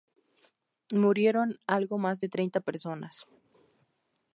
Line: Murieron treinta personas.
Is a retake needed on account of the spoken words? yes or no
yes